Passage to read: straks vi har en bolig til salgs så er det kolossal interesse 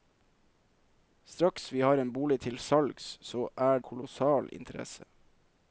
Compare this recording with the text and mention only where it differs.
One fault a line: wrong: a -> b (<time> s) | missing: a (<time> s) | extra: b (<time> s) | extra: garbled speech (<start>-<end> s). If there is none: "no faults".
missing: det (3.8 s)